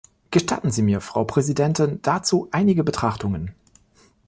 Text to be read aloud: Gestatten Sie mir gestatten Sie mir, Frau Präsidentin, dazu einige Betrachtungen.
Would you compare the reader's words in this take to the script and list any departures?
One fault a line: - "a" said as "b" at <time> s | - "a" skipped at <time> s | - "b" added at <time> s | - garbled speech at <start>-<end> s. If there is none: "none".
- "gestatten Sie mir" skipped at 1.0 s